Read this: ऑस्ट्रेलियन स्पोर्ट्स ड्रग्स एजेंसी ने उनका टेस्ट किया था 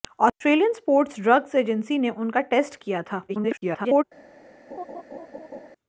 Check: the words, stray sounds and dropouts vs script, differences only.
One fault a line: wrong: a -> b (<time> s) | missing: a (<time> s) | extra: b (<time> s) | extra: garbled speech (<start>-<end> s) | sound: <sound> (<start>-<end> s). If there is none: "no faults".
extra: garbled speech (3.3-4.0 s)
sound: laugh (4.7-5.7 s)